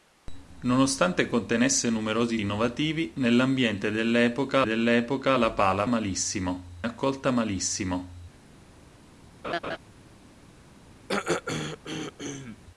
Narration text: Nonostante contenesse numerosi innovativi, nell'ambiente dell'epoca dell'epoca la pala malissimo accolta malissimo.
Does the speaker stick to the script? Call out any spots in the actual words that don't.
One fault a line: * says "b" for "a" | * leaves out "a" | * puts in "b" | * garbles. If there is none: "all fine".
all fine